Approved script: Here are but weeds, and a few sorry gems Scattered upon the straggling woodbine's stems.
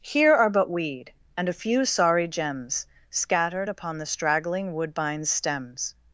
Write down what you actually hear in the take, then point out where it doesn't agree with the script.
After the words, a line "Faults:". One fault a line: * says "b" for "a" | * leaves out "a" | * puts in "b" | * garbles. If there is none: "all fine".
Here are but weed, and a few sorry gems Scattered upon the straggling woodbine's stems.
Faults:
* says "weed" for "weeds"